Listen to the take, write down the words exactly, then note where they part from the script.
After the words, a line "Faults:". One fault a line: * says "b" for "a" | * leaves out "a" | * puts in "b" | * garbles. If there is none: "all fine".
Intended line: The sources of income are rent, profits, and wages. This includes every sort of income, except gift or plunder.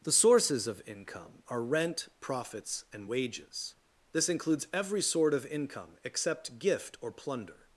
The sources of income are rent, profits, and wages. This includes every sort of income, except gift or plunder.
Faults:
all fine